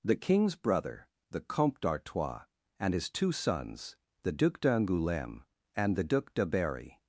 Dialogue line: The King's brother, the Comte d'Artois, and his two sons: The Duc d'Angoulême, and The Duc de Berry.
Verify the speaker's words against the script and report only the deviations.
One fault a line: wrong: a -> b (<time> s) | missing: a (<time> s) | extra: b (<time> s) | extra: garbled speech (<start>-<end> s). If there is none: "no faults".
no faults